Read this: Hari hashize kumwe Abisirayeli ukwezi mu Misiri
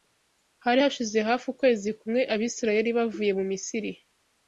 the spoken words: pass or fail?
fail